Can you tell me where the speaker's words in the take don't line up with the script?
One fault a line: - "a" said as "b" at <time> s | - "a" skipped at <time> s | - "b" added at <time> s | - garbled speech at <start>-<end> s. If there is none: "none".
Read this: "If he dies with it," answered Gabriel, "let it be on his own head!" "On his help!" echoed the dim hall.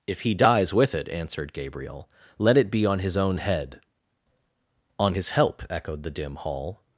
none